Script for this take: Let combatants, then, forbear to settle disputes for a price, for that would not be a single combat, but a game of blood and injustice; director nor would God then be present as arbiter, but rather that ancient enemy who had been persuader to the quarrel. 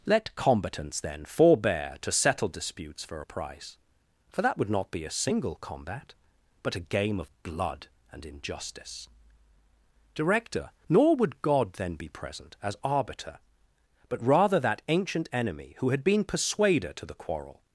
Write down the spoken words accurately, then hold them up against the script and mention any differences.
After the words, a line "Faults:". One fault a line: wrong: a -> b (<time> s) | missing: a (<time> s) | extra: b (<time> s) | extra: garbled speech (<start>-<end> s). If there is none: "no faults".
Let combatants, then, forbear to settle disputes for a price, for that would not be a single combat, but a game of blood and injustice; director nor would God then be present as arbiter, but rather that ancient enemy who had been persuader to the quarrel.
Faults:
no faults